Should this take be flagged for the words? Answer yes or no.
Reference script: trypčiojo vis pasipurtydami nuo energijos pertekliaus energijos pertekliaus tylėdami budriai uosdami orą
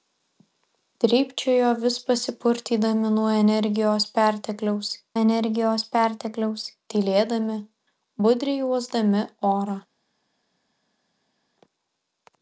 no